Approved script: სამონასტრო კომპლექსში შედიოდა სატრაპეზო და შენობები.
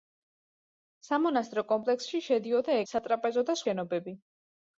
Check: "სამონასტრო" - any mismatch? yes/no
no